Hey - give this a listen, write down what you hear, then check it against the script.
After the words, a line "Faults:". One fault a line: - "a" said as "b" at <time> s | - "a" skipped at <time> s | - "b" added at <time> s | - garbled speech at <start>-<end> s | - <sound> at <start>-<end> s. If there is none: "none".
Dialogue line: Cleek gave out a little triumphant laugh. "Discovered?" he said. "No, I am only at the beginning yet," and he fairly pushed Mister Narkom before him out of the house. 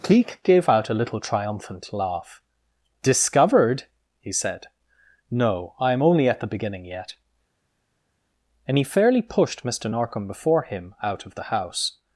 Cleek gave out a little triumphant laugh. "Discovered?" he said. "No, I am only at the beginning yet," and he fairly pushed Mister Narkom before him out of the house.
Faults:
none